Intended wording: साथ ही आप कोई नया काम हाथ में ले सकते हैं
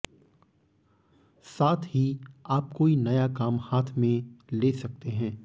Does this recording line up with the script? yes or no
yes